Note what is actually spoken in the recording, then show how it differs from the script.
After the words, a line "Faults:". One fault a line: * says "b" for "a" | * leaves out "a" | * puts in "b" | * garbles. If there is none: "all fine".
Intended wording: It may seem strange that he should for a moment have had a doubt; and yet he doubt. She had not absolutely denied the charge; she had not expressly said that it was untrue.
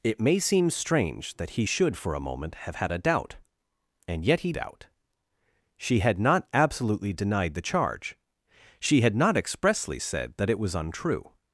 It may seem strange that he should for a moment have had a doubt; and yet he doubt. She had not absolutely denied the charge; she had not expressly said that it was untrue.
Faults:
all fine